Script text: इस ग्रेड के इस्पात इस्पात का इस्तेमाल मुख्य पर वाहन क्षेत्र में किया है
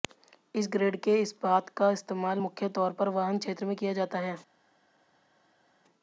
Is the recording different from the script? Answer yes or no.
yes